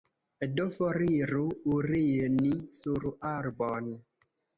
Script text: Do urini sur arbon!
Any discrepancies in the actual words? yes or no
yes